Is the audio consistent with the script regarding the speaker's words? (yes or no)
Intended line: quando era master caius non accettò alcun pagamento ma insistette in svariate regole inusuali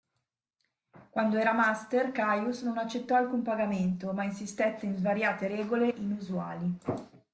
yes